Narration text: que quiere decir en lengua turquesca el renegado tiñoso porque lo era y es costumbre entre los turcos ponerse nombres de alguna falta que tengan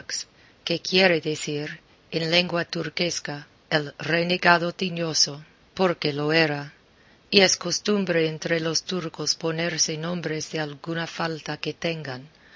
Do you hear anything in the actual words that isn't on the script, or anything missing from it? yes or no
no